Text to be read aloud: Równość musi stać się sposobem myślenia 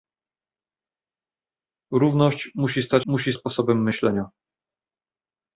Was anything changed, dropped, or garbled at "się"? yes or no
yes